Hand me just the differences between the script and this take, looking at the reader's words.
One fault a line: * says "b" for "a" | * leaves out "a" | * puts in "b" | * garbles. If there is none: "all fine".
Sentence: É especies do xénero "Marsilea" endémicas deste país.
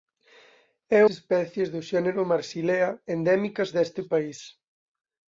all fine